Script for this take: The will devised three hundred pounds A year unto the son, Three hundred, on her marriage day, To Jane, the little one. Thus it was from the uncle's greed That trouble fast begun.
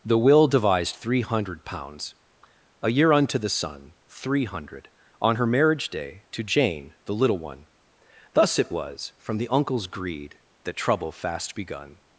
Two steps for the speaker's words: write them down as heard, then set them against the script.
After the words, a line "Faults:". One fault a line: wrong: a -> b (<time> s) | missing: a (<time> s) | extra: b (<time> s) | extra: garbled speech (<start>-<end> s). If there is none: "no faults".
The will devised three hundred pounds A year unto the son, Three hundred, on her marriage day, To Jane, the little one. Thus it was from the uncle's greed That trouble fast begun.
Faults:
no faults